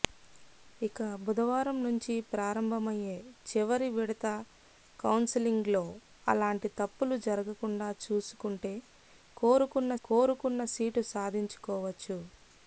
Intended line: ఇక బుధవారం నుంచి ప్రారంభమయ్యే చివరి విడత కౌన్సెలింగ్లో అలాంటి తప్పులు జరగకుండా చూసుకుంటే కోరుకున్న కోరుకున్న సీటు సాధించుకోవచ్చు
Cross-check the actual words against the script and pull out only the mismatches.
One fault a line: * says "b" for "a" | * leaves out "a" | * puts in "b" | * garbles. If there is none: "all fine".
all fine